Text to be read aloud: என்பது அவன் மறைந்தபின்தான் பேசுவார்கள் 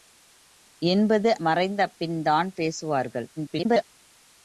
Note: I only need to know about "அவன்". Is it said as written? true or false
false